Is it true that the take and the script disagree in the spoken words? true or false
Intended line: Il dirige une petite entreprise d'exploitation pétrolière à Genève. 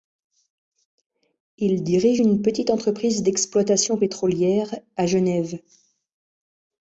false